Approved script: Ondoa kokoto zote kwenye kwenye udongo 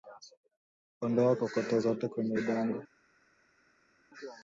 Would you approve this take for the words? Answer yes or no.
no